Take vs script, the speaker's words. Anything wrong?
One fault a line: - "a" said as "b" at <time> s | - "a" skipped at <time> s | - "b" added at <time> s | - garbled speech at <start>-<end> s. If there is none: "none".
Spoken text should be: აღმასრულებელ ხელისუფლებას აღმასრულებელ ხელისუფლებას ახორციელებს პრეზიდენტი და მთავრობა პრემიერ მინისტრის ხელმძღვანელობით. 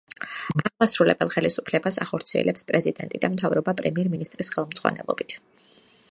- "აღმასრულებელ ხელისუფლებას" skipped at 2.0 s